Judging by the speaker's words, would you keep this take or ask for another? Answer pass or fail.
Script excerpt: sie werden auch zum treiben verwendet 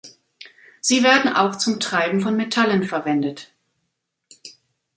fail